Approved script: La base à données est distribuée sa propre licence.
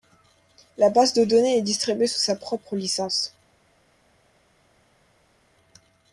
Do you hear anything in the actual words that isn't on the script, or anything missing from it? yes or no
yes